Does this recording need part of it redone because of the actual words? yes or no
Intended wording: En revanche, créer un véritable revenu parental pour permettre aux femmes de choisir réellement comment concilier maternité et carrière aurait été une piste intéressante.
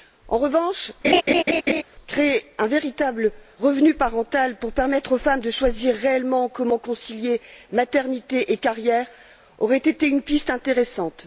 no